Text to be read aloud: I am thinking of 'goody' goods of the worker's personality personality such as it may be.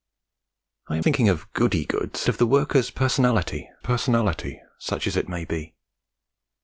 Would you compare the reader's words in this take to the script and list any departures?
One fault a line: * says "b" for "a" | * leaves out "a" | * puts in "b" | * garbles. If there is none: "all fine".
all fine